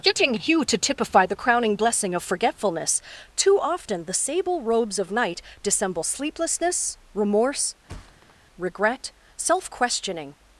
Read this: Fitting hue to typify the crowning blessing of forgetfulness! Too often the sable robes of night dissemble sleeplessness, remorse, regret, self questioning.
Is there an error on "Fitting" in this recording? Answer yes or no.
yes